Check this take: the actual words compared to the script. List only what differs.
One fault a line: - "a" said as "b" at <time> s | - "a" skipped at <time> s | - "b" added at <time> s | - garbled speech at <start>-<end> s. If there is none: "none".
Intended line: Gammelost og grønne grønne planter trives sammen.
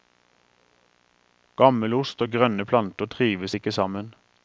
- "grønne" skipped at 2.6 s
- "ikke" added at 3.6 s